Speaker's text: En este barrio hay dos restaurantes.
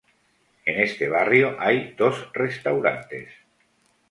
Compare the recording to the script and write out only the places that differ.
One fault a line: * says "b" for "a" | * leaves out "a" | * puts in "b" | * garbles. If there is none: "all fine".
all fine